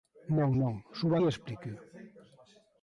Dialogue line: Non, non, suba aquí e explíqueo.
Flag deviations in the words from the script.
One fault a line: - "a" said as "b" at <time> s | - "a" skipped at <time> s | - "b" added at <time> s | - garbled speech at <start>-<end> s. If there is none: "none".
- "aquí" skipped at 1.1 s